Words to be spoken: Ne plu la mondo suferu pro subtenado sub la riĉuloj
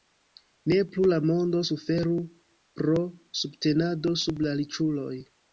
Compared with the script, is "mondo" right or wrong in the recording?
right